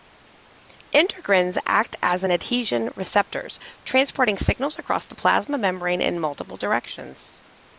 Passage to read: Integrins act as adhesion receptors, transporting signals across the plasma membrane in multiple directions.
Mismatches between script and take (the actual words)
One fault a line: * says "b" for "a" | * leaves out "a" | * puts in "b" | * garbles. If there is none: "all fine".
all fine